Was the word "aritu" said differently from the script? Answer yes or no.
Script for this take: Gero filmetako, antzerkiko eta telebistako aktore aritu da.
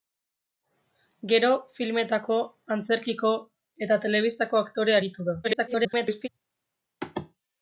no